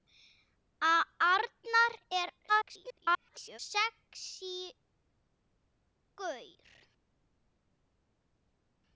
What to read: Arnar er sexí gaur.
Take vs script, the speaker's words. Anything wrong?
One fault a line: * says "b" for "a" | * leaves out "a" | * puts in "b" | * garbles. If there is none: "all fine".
* garbles